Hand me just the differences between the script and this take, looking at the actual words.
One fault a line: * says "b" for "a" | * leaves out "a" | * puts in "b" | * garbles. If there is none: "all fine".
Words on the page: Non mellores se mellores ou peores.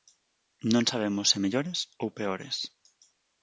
* says "sabemos" for "mellores"